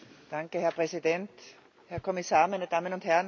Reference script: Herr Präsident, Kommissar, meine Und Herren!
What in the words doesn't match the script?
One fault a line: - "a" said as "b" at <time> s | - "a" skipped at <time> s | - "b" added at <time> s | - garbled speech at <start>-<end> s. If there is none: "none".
- "Herr" added at 1.9 s
- "Damen" added at 2.7 s